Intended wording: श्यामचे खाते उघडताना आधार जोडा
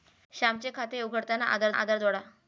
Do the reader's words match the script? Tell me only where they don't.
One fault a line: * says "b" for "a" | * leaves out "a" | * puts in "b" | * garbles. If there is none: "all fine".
* puts in "आधार"